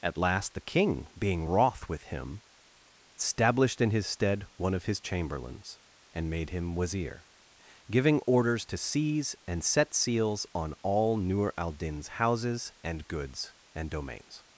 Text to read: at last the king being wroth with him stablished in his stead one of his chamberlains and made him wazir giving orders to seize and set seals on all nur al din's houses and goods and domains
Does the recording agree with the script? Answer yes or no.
yes